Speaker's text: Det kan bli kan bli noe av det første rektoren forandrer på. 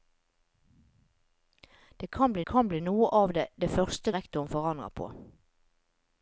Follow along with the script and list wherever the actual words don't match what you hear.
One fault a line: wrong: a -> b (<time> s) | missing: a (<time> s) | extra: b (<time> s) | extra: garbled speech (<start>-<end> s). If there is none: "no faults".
no faults